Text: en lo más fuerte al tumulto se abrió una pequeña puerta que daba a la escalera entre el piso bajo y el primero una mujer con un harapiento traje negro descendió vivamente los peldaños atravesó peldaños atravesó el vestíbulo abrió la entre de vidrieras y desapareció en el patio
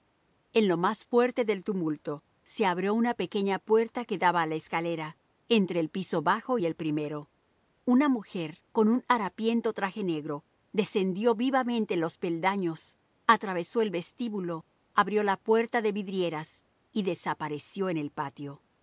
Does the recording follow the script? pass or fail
fail